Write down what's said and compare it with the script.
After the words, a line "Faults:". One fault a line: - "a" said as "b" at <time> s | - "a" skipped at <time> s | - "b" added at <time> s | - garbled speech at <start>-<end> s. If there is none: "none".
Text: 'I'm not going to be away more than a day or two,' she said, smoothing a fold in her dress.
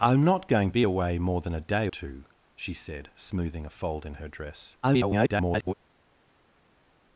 'I'm not going be away more than a day two,' she said, smoothing a fold in her dress. [garbled]
Faults:
- "to" skipped at 0.7 s
- "or" skipped at 1.9 s
- garbled speech at 4.8-5.7 s